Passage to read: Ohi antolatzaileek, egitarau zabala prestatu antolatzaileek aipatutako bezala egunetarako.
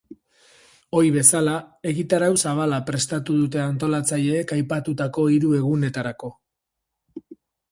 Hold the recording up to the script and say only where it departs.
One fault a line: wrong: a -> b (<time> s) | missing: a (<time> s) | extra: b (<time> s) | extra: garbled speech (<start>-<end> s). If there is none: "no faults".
wrong: antolatzaileek -> bezala (1.2 s)
extra: dute (3.4 s)
wrong: bezala -> hiru (5.3 s)